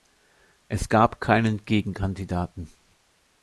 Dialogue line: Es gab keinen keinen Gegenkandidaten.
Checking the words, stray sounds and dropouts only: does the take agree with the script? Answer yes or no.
no